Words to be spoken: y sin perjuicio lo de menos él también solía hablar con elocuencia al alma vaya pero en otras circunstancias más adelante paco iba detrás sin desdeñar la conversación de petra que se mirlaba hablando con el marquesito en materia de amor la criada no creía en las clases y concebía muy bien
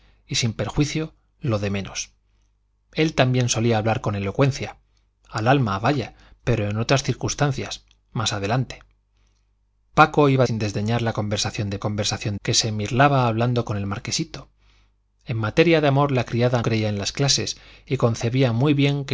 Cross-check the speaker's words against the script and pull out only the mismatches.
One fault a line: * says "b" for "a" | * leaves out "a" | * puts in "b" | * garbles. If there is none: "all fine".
* leaves out "detrás"
* says "conversación" for "petra"
* leaves out "no"